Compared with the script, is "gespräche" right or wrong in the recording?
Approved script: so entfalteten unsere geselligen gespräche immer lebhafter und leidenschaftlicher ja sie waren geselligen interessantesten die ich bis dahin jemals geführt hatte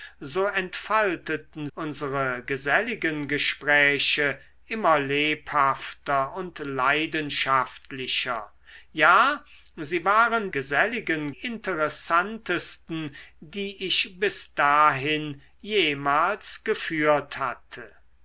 right